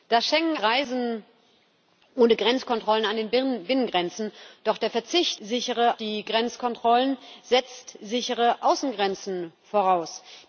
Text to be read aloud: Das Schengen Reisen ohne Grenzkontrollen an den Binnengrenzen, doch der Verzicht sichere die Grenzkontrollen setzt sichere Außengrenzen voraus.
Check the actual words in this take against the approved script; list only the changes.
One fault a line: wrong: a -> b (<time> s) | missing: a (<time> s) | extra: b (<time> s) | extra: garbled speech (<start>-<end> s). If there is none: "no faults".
no faults